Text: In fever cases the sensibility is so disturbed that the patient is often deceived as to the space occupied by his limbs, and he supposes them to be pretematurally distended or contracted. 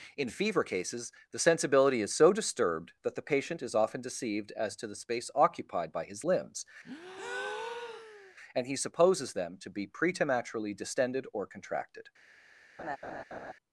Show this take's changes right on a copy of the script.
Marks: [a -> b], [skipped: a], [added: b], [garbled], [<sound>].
In fever cases the sensibility is so disturbed that the patient is often deceived as to the space occupied by his limbs, [breath] and he supposes them to be pretematurally distended or contracted. [laugh]